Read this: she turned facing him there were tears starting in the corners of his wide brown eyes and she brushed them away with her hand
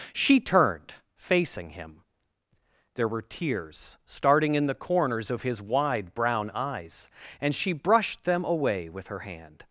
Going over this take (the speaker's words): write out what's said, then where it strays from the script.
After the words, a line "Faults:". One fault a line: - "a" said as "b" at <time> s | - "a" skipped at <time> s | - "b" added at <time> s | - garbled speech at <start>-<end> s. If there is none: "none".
she turned facing him there were tears starting in the corners of his wide brown eyes and she brushed them away with her hand
Faults:
none